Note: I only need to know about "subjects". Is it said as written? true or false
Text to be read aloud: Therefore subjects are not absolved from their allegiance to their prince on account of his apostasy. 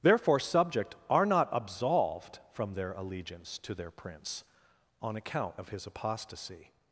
false